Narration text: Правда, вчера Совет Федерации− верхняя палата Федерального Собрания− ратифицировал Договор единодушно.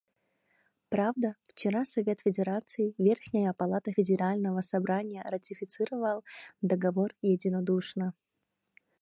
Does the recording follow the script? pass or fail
pass